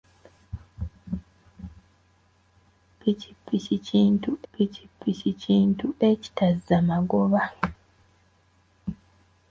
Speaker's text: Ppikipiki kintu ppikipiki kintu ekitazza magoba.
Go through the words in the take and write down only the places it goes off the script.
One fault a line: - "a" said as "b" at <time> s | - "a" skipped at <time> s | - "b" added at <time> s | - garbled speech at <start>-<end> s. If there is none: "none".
none